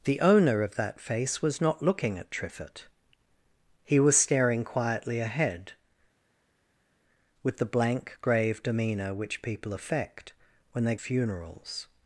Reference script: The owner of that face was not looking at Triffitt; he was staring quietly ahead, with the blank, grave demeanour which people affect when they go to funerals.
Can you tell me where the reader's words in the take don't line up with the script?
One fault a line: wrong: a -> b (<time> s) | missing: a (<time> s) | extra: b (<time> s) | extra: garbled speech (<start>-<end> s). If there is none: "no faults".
missing: go to (11.0 s)